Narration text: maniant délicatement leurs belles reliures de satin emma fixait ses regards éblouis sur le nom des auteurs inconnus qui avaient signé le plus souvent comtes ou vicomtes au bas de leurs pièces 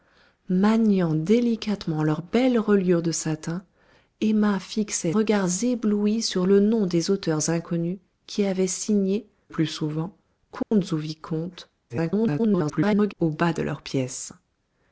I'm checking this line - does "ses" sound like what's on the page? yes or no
no